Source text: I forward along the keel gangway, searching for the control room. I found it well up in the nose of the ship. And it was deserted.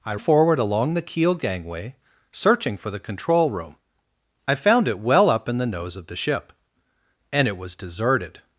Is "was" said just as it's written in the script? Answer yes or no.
yes